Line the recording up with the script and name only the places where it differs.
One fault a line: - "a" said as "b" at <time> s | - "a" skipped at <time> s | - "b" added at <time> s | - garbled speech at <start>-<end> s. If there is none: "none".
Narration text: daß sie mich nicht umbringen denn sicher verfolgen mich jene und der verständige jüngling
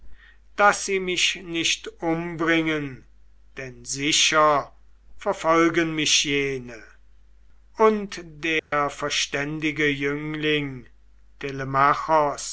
none